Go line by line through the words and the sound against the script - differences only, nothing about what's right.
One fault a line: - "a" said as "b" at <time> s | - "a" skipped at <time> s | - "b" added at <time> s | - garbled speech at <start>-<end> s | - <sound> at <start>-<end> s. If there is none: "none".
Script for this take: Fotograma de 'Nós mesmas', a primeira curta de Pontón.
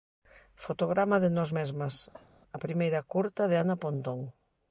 - cough at 2.1-2.3 s
- "Ana" added at 3.6 s